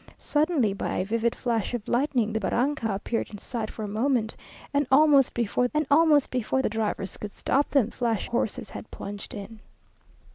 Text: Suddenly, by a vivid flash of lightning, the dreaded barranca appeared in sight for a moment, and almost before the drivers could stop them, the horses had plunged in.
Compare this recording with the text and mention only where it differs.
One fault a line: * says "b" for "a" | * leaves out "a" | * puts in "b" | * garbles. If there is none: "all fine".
* leaves out "dreaded"
* puts in "and almost before"
* says "flash" for "the"